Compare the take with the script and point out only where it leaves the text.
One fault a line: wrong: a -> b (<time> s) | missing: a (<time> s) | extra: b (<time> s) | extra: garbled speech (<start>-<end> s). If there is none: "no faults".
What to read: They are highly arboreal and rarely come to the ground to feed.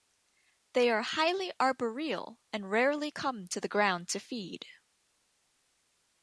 no faults